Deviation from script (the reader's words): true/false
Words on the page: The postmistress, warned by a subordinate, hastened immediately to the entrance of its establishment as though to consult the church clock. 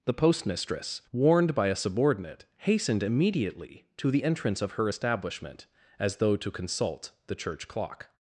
true